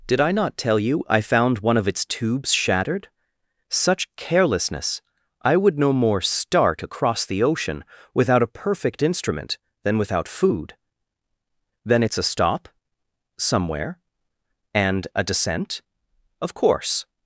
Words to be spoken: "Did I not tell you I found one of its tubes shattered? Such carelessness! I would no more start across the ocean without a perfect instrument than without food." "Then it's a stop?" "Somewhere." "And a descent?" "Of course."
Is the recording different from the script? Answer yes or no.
no